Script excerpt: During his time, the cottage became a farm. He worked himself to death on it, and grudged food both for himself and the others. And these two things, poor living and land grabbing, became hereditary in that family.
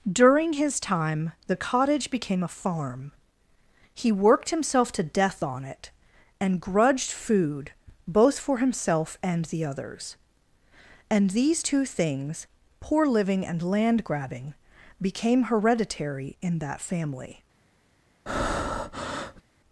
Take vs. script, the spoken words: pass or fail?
pass